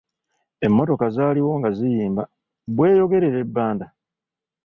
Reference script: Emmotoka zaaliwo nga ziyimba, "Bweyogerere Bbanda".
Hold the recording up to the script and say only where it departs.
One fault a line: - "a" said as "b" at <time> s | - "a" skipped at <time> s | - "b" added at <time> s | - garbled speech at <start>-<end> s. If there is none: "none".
none